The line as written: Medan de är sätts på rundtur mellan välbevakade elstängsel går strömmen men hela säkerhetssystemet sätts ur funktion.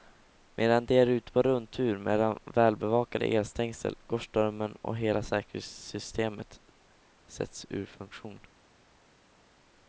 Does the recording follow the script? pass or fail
fail